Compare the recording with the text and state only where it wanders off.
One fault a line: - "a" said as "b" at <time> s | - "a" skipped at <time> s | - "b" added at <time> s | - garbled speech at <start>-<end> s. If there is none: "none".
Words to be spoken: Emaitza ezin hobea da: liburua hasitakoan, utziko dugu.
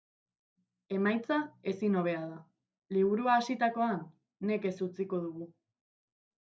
- "nekez" added at 4.5 s